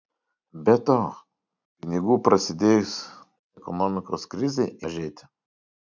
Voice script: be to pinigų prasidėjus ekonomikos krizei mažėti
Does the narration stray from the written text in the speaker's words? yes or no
no